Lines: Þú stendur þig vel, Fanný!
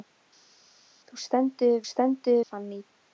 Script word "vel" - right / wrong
wrong